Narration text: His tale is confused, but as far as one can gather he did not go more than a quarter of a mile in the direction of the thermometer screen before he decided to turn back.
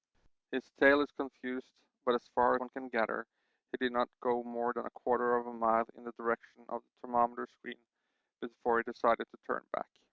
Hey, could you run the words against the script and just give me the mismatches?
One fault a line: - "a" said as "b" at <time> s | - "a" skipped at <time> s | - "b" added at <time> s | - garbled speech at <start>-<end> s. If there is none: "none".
- "as" skipped at 2.6 s